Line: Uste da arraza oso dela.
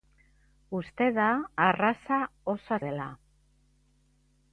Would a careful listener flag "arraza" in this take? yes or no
no